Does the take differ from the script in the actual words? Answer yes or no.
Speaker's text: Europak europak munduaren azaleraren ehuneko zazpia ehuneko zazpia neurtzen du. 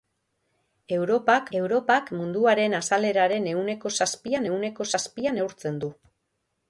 no